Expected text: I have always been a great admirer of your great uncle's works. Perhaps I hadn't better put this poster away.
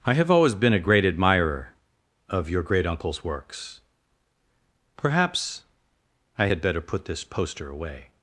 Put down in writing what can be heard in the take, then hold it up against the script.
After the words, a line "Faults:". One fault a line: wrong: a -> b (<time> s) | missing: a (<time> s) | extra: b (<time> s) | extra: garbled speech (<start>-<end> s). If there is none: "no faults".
I have always been a great admirer of your great uncle's works. Perhaps I had better put this poster away.
Faults:
wrong: hadn't -> had (6.4 s)